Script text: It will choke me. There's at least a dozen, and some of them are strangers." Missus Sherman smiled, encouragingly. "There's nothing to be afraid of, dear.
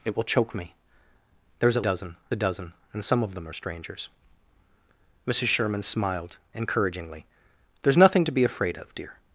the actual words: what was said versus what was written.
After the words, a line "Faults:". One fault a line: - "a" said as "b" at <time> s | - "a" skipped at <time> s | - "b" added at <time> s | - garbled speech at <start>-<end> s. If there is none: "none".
It will choke me. There's at dozen a dozen, and some of them are strangers." Missus Sherman smiled, encouragingly. "There's nothing to be afraid of, dear.
Faults:
- "least" said as "dozen" at 1.8 s